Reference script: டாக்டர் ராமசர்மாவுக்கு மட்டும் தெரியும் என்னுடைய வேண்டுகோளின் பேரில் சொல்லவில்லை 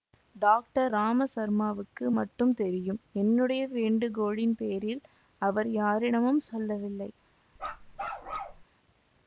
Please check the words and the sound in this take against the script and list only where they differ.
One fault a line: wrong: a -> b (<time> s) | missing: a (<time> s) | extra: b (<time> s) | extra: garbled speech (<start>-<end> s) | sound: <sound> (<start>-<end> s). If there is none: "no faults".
extra: அவர் யாரிடமும் (5.4 s)
sound: bark (7.6-8.6 s)